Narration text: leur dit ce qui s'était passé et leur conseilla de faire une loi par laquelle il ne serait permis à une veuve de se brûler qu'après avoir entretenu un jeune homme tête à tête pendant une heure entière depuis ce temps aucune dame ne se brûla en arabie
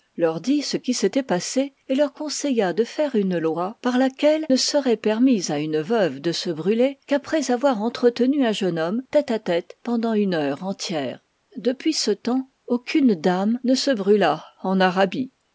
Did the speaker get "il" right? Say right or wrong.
wrong